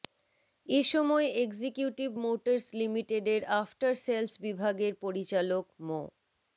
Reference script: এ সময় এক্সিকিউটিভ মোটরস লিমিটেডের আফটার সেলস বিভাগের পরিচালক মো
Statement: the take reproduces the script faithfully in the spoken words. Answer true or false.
true